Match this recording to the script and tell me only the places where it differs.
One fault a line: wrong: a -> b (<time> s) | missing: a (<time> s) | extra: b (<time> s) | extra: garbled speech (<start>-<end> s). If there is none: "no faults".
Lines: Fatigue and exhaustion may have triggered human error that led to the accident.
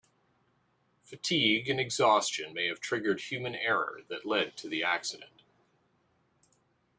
no faults